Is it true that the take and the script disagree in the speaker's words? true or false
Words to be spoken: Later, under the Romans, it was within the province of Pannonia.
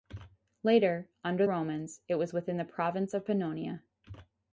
true